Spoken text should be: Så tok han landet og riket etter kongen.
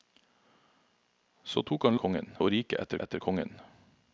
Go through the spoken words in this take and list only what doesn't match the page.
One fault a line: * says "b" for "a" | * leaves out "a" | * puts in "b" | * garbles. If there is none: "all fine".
* says "kongen" for "landet"
* puts in "etter"